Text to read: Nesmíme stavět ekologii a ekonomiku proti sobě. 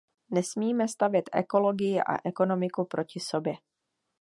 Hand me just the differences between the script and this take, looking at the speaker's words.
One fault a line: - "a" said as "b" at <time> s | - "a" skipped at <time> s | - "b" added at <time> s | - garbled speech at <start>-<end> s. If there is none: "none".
none